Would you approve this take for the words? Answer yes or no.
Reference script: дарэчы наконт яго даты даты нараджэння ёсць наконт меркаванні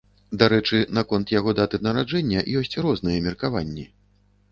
no